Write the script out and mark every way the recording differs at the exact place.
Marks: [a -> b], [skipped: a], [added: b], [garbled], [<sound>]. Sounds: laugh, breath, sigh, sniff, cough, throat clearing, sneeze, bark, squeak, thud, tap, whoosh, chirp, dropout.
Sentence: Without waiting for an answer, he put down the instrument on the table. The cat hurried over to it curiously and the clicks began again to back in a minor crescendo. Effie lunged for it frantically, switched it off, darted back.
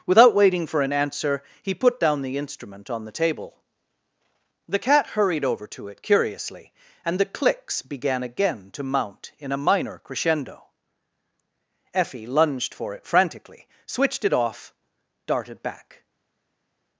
Without waiting for an answer, he put down the instrument on the table. The cat hurried over to it curiously and the clicks began again to [back -> mount] in a minor crescendo. Effie lunged for it frantically, switched it off, darted back.